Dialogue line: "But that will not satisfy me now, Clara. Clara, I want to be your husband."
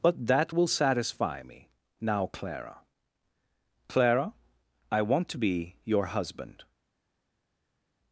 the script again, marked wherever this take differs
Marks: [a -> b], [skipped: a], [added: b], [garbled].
"But that will [skipped: not] satisfy me now, Clara. Clara, I want to be your husband."